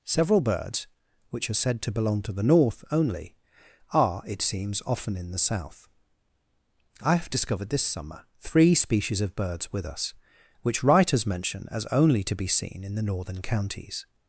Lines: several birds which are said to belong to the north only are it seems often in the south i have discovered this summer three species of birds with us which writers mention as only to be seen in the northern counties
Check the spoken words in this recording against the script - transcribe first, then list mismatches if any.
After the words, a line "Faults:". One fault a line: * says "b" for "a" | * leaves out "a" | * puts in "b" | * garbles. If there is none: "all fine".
several birds which are said to belong to the north only are it seems often in the south i have discovered this summer three species of birds with us which writers mention as only to be seen in the northern counties
Faults:
all fine